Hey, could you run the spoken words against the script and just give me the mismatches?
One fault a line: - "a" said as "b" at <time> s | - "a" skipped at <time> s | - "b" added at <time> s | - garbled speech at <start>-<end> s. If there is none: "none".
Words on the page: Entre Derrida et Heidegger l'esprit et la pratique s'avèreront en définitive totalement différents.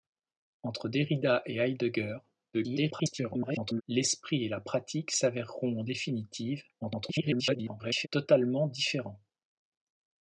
- garbled speech at 2.5-3.8 s
- garbled speech at 6.8-8.1 s